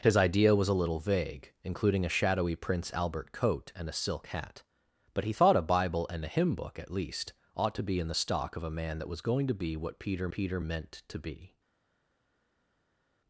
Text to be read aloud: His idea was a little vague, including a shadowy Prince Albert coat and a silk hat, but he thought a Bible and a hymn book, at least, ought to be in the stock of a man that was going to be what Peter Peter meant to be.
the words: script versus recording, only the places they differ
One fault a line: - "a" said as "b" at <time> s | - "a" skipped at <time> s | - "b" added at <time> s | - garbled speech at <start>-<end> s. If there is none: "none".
none